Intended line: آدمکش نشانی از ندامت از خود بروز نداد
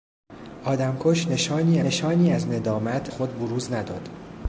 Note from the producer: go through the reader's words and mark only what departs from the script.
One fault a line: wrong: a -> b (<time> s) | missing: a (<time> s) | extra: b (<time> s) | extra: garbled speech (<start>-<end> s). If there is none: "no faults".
extra: نشانی (1.8 s)
missing: از (3.1 s)